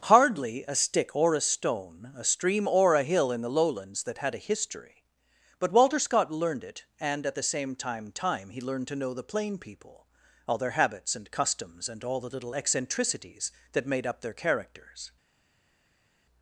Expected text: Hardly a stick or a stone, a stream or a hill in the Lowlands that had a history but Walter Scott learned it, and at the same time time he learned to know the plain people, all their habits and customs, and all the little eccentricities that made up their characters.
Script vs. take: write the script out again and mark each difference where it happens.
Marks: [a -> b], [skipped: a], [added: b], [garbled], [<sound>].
Hardly a stick or a stone, a stream or a hill in the Lowlands that had a history but Walter Scott learned it, and at the same time time he learned to know the plain people, all their habits and customs, and all the little eccentricities that made up their characters.